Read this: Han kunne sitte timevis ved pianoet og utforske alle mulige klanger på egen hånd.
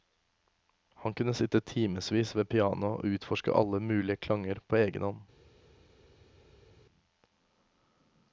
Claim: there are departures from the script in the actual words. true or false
false